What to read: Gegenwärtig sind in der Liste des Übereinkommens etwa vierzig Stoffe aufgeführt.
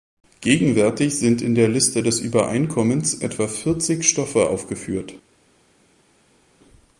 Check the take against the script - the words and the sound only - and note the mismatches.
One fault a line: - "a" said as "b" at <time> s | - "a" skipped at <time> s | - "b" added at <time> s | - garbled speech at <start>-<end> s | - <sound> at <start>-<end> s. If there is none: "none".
none